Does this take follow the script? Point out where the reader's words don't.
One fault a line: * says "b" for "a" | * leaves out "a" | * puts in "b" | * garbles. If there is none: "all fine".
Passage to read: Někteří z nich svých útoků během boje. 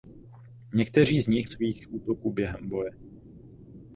all fine